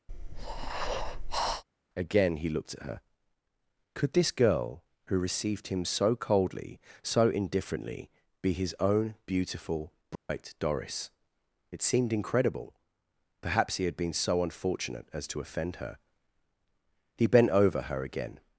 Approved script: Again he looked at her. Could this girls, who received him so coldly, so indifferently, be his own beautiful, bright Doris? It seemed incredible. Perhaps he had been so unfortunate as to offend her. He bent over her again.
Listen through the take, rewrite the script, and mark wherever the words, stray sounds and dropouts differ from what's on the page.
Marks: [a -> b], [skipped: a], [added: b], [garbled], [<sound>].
[breath] Again he looked at her. Could this [girls, -> girl] who received him so coldly, so indifferently, be his own beautiful, bright [dropout] Doris? It seemed incredible. Perhaps he had been so unfortunate as to offend her. He bent over her again.